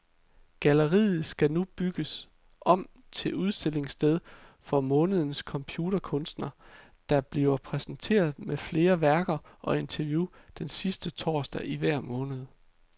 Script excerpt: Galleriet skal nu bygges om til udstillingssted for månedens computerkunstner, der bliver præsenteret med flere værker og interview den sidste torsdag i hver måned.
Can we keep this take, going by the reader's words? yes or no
yes